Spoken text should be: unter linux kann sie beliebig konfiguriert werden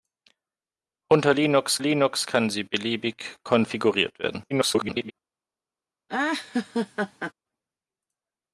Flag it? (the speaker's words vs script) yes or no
yes